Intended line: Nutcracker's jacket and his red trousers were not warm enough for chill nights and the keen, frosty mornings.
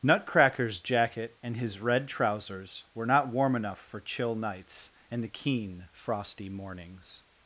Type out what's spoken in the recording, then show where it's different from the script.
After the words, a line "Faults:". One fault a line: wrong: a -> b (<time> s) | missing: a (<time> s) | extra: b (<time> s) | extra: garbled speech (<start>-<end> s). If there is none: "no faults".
Nutcracker's jacket and his red trousers were not warm enough for chill nights and the keen, frosty mornings.
Faults:
no faults